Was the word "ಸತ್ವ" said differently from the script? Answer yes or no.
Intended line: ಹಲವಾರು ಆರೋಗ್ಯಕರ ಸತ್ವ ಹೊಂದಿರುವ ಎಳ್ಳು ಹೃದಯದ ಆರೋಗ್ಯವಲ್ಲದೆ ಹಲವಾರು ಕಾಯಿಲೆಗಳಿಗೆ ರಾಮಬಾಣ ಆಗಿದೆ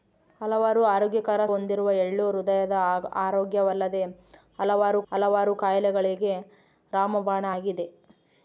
yes